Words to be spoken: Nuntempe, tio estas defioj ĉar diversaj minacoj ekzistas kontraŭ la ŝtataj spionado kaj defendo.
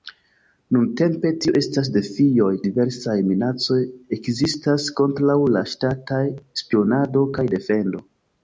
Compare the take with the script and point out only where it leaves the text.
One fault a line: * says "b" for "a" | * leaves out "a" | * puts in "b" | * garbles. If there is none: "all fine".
* leaves out "ĉar"